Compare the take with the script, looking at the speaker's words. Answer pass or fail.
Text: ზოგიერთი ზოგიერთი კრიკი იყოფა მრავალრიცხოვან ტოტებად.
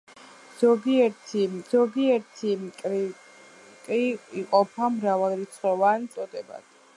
pass